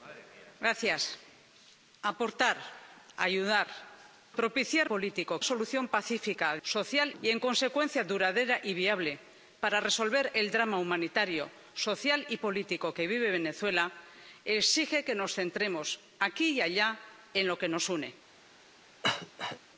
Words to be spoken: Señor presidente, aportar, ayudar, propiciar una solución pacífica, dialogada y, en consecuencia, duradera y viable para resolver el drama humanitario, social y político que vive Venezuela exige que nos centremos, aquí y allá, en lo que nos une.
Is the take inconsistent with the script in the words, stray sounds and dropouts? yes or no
yes